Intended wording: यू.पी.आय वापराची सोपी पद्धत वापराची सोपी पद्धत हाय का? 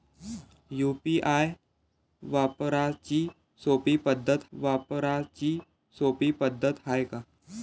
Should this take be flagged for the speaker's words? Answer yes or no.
no